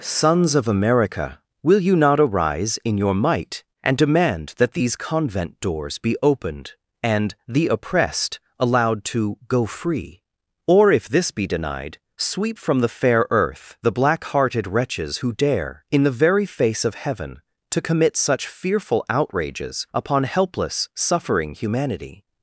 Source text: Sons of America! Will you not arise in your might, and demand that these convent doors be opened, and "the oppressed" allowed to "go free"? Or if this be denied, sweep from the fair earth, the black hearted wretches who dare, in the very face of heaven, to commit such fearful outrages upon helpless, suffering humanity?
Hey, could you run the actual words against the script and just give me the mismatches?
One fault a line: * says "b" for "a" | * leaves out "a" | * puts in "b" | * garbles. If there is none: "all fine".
all fine